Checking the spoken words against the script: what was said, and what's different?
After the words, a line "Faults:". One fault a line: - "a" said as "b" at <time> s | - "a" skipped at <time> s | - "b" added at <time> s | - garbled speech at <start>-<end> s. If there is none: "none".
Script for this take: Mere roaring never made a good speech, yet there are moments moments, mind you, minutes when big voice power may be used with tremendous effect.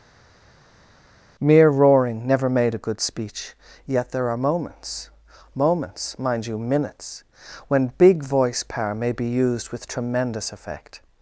Mere roaring never made a good speech, yet there are moments moments, mind you, minutes when big voice power may be used with tremendous effect.
Faults:
none